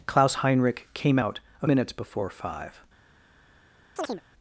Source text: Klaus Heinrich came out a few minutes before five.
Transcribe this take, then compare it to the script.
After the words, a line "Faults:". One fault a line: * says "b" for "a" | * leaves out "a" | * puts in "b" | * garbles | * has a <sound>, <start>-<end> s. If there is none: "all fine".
Klaus Heinrich came out a minutes before five.
Faults:
* leaves out "few"
* has a chirp, 4.0-4.2 s